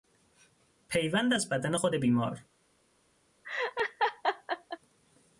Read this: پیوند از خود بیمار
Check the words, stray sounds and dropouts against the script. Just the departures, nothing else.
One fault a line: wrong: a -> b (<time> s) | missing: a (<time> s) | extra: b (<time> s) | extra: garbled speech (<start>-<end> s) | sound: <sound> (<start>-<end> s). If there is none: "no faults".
extra: بدن (1.5 s)
sound: laugh (3.4-4.8 s)